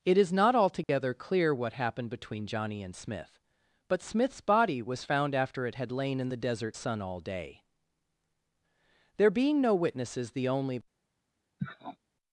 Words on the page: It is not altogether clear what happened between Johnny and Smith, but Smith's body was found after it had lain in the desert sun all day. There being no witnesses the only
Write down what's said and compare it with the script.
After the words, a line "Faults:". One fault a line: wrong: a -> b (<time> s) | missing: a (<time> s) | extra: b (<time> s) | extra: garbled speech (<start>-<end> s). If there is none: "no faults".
It is not altogether clear what happened between Johnny and Smith, but Smith's body was found after it had lain in the desert sun all day. There being no witnesses the only
Faults:
no faults